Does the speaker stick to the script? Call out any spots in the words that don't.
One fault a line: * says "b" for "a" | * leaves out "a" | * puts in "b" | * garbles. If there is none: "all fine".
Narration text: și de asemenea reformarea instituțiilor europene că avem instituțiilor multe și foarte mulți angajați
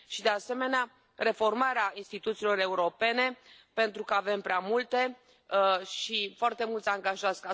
* puts in "pentru"
* says "prea" for "instituțiilor"